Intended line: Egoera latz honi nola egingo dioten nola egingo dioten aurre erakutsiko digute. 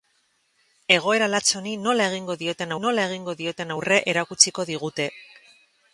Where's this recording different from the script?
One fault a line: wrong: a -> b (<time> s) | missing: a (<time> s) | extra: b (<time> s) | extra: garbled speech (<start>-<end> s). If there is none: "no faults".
no faults